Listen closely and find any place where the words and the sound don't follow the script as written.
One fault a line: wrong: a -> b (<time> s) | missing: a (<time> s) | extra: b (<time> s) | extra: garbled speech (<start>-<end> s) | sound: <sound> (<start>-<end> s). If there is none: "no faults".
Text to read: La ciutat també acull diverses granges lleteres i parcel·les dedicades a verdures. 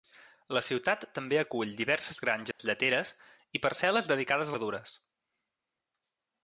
sound: dropout (2.5-2.6 s)